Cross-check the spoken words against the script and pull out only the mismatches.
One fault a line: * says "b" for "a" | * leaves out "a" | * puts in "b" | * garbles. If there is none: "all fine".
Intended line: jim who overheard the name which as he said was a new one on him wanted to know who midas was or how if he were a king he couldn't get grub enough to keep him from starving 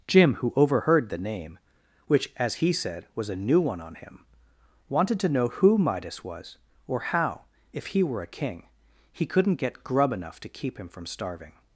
all fine